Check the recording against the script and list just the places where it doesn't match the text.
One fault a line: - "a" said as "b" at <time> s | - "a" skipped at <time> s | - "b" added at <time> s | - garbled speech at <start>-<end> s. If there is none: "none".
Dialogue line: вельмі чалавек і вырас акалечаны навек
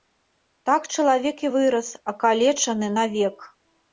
- "вельмі" said as "так" at 0.7 s